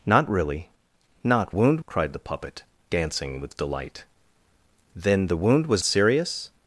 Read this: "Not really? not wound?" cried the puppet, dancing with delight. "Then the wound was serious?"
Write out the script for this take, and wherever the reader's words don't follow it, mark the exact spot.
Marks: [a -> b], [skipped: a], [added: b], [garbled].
"Not really? not wound?" cried the puppet, dancing with delight. "Then the wound was serious?"